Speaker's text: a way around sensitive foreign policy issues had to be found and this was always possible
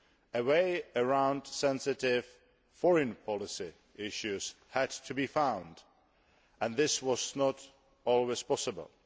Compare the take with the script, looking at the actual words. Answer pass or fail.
fail